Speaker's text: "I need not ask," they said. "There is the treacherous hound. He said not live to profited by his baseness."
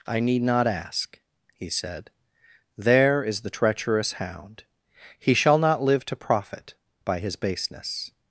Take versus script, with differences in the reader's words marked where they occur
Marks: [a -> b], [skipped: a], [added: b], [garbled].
"I need not ask," [they -> he] said. "There is the treacherous hound. He [said -> shall] not live to [profited -> profit] by his baseness."